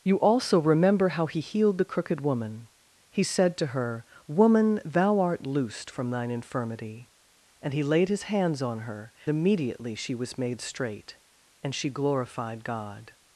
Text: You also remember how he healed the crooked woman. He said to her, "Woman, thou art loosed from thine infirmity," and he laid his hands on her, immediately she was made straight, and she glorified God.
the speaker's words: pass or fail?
pass